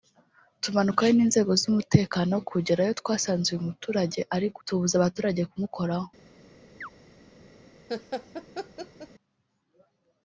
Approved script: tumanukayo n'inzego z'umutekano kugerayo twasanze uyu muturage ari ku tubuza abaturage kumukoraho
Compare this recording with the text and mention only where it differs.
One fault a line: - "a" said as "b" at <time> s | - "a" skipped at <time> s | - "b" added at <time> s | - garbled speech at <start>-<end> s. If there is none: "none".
none